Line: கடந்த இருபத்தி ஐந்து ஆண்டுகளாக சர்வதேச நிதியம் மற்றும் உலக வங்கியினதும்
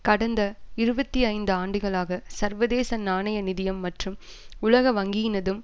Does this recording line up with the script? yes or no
no